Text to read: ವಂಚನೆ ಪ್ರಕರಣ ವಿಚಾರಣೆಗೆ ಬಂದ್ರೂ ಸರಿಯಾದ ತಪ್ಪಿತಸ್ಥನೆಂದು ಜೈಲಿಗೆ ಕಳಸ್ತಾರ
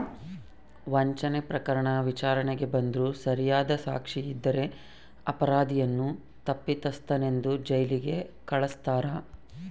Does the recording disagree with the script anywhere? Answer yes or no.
yes